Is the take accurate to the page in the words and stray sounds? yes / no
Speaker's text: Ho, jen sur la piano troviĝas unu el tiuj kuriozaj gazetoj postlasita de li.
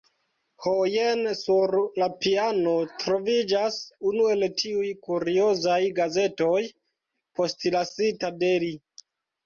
yes